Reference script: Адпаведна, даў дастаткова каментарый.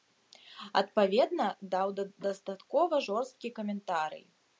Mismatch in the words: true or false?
true